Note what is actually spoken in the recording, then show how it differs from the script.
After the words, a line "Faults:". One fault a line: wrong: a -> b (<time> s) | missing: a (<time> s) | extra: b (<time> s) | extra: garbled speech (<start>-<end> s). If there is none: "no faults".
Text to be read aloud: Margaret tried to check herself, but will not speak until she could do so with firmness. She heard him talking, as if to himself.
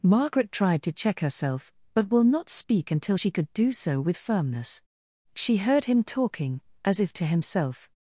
Margaret tried to check herself, but will not speak until she could do so with firmness. She heard him talking, as if to himself.
Faults:
no faults